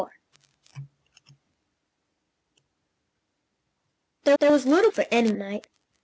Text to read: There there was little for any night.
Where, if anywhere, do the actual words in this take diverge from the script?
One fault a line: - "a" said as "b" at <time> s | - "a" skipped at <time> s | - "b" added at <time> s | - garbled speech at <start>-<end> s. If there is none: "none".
none